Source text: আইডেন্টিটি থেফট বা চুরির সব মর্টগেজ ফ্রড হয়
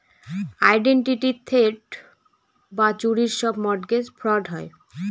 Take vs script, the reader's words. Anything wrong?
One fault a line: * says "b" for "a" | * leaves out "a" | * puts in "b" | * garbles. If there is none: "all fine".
all fine